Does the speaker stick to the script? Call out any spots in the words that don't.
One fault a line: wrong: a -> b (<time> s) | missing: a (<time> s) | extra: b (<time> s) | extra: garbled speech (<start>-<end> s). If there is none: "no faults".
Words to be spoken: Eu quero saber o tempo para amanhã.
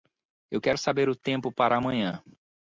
no faults